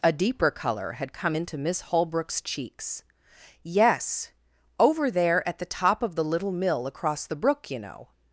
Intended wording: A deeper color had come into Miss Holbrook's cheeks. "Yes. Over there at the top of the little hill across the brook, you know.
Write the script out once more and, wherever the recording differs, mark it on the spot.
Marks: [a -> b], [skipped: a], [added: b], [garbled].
A deeper color had come into Miss Holbrook's cheeks. "Yes. Over there at the top of the little [hill -> mill] across the brook, you know.